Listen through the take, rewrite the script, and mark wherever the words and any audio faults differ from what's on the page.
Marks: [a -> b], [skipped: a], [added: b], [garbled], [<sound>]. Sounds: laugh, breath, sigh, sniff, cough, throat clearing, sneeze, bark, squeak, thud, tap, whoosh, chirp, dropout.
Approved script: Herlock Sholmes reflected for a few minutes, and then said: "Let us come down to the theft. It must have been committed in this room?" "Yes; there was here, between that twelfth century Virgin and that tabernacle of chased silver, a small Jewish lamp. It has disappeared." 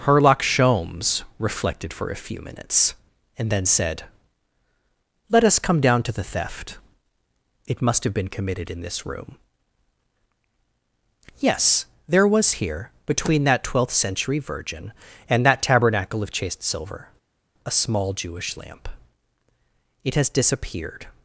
Herlock Sholmes reflected for a few minutes, and then said: "Let us come down to the theft. It must have been committed in this room?" "Yes; there was here, between that twelfth century Virgin and that tabernacle of chased silver, a small Jewish lamp. It has disappeared."